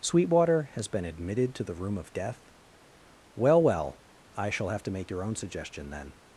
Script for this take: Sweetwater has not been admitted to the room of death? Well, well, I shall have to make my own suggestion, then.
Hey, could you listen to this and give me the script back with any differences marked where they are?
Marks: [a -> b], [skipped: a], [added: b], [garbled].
Sweetwater has [skipped: not] been admitted to the room of death? Well, well, I shall have to make [my -> your] own suggestion, then.